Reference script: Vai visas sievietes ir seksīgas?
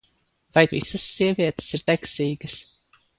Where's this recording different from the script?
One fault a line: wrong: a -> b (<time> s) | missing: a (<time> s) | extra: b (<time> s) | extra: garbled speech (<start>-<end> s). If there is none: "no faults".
no faults